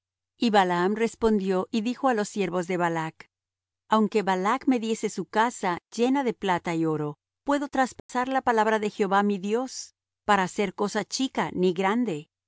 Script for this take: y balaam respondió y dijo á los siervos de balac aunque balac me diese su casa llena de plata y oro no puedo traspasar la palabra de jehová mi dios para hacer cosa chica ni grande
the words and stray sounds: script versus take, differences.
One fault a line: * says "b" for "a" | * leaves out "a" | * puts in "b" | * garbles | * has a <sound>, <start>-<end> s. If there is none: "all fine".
* leaves out "no"
* has a dropout, 8.0-8.1 s